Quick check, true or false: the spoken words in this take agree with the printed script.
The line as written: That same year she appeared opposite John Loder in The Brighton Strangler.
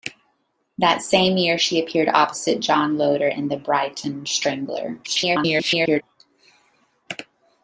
false